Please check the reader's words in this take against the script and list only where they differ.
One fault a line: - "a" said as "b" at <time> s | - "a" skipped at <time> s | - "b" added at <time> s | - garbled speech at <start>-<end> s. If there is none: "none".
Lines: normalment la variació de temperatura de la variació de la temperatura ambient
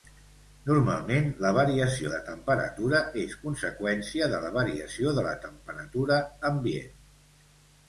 - "és conseqüència" added at 3.2 s